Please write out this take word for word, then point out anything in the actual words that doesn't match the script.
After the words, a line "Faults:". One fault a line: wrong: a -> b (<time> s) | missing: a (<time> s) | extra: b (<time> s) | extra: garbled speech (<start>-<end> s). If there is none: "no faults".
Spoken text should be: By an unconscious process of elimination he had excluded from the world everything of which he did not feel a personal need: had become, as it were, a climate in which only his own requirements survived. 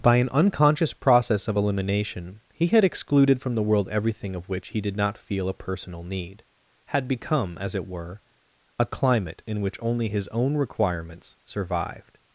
By an unconscious process of elimination he had excluded from the world everything of which he did not feel a personal need: had become, as it were, a climate in which only his own requirements survived.
Faults:
no faults